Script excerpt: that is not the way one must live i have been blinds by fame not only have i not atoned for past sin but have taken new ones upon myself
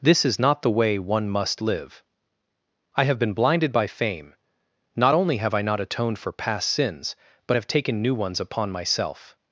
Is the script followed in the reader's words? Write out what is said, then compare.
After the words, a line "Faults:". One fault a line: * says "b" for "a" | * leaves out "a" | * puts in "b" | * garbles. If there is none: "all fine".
this is not the way one must live i have been blinded by fame not only have i not atoned for past sins but have taken new ones upon myself
Faults:
* says "this" for "that"
* says "blinded" for "blinds"
* says "sins" for "sin"